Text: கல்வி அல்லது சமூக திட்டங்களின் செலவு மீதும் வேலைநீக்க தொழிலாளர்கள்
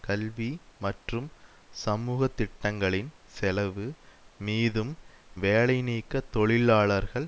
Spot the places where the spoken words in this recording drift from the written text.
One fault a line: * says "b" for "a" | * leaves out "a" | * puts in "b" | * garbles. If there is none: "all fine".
* says "மற்றும்" for "அல்லது"